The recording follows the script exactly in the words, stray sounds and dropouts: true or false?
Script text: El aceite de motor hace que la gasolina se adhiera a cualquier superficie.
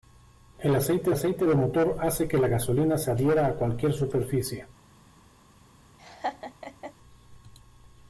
false